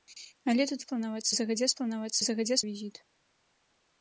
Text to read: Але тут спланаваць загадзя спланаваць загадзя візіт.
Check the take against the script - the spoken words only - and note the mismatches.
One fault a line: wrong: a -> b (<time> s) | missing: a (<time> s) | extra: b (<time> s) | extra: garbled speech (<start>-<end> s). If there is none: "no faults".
no faults